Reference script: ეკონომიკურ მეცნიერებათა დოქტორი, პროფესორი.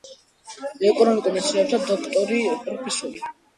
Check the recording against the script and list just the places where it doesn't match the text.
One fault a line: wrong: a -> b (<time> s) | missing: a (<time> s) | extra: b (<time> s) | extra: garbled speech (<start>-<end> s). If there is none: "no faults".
no faults